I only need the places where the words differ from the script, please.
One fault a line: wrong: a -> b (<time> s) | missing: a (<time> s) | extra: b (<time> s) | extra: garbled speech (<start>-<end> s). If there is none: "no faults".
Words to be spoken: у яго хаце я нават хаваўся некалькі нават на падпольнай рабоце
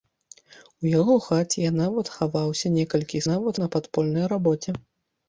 no faults